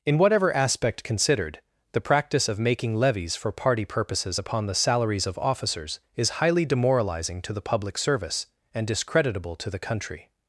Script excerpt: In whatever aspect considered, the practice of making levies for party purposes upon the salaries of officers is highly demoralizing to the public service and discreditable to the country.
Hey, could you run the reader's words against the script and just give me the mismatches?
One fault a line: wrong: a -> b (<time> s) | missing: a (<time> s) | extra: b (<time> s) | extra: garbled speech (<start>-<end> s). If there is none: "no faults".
no faults